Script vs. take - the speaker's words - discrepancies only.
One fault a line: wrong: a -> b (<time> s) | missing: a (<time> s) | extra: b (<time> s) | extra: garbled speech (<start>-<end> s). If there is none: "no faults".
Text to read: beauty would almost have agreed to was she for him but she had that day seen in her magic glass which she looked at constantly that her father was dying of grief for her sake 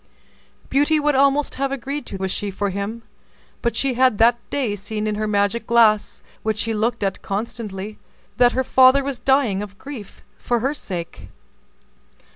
no faults